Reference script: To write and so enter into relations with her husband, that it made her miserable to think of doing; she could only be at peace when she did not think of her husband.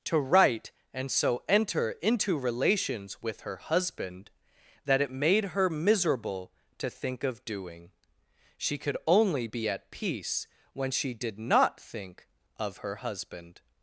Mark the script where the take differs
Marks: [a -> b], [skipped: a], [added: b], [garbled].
To write and so enter into relations with her husband, that it made her miserable to think of doing; she could only be at peace when she did not think of her husband.